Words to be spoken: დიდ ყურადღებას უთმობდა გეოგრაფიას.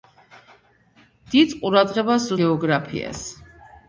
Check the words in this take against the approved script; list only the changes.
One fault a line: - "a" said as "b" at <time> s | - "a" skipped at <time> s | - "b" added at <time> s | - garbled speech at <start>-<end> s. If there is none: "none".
- "უთმობდა" skipped at 2.3 s